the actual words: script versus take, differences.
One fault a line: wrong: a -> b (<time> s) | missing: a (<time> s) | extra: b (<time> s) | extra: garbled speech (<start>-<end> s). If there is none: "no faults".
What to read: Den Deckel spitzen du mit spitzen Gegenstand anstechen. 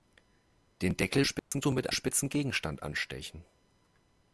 no faults